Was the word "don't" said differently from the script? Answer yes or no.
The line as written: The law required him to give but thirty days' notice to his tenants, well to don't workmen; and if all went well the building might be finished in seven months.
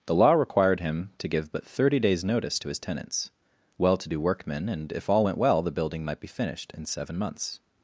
yes